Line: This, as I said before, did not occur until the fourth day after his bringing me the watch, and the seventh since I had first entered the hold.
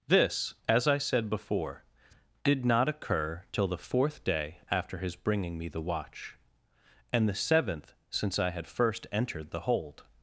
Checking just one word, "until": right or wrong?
wrong